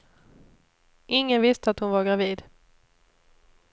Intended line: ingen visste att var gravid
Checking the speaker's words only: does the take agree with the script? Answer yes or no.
no